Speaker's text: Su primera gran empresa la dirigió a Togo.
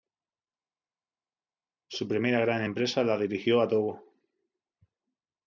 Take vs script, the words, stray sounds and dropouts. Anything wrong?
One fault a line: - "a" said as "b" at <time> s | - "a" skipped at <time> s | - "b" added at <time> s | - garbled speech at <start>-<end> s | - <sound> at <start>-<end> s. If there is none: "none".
none